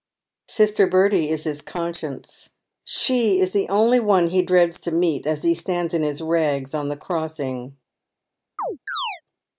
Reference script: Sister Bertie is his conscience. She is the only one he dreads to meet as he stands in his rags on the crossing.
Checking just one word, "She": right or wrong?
right